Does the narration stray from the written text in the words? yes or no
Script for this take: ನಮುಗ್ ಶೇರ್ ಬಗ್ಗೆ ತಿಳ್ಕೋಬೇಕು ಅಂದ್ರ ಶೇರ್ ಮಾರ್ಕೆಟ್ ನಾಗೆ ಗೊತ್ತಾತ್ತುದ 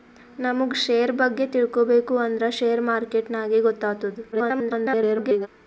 yes